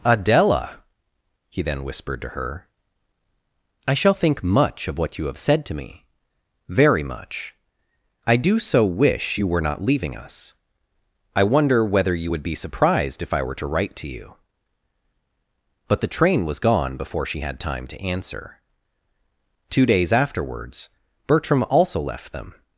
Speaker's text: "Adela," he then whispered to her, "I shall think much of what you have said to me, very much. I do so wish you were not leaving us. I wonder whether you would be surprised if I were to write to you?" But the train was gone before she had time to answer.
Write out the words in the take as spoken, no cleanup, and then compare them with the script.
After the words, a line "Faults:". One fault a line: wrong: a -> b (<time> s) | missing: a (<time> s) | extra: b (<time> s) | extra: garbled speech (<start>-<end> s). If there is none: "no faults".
"Adela," he then whispered to her, "I shall think much of what you have said to me, very much. I do so wish you were not leaving us. I wonder whether you would be surprised if I were to write to you?" But the train was gone before she had time to answer. Two days afterwards, Bertram also left them
Faults:
extra: Two days afterwards Bertram also left them (19.7 s)